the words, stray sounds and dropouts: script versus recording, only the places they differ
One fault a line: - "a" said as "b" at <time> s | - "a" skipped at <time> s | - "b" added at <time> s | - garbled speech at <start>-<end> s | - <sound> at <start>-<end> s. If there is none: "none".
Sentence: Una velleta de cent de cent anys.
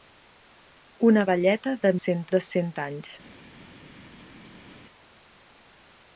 none